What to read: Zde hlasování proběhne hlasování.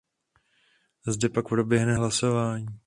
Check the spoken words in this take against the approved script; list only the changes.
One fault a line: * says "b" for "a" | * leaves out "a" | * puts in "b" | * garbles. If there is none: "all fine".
* says "pak" for "hlasování"